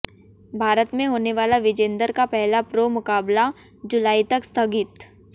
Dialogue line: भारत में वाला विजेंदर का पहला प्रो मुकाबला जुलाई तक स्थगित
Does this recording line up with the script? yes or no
no